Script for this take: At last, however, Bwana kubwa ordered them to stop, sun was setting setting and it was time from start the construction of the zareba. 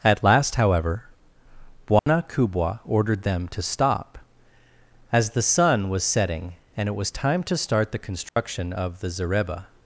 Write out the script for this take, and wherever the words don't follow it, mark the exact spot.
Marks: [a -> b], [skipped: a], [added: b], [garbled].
At last, however, Bwana kubwa ordered them to stop, [added: as the] sun was setting [skipped: setting] and it was time [from -> to] start the construction of the zareba.